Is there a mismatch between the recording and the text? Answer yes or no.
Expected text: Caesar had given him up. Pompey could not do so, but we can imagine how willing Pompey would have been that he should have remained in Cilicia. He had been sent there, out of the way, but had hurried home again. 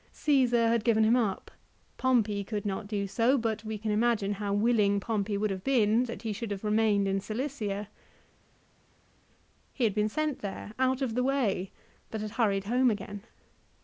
no